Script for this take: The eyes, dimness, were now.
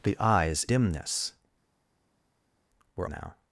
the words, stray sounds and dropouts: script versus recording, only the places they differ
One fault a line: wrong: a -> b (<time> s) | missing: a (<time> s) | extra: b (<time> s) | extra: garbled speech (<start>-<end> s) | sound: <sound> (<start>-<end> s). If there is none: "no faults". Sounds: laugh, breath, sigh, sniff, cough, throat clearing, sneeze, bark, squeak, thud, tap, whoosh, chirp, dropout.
no faults